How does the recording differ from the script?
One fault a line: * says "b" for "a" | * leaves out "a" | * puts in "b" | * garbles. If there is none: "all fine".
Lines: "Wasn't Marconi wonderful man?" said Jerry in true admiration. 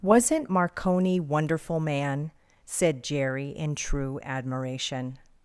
all fine